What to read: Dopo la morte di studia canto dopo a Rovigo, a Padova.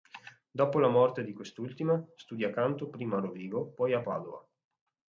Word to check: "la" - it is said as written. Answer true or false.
true